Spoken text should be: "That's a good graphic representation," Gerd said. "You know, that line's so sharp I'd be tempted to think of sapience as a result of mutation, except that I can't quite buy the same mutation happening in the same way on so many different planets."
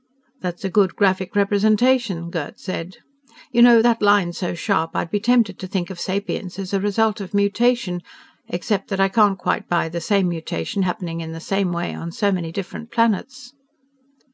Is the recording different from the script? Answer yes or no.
no